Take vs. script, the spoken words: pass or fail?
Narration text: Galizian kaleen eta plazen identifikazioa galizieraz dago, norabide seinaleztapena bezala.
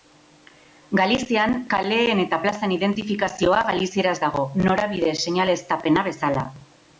pass